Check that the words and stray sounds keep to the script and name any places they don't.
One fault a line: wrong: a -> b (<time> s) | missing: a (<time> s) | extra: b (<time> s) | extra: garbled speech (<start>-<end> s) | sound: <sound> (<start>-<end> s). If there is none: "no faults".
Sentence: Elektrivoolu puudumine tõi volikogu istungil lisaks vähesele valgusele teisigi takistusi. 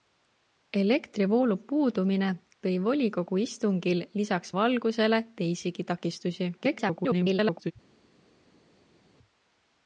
missing: vähesele (4.5 s)
extra: garbled speech (6.6-7.7 s)